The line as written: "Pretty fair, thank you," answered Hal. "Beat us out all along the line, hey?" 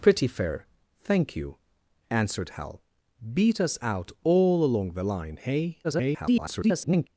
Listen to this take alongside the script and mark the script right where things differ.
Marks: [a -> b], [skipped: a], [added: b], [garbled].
"Pretty fair, thank you," answered Hal. "Beat us out all along the line, hey?" [garbled]